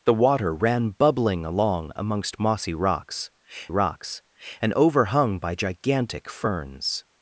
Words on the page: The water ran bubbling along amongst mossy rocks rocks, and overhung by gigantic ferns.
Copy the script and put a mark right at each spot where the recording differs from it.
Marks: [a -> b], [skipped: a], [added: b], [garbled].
The water ran bubbling along amongst mossy rocks rocks, and overhung by gigantic ferns.